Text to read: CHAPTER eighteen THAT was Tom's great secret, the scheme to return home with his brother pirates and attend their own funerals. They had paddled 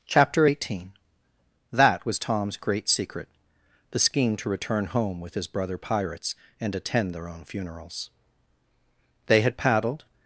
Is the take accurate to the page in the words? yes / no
yes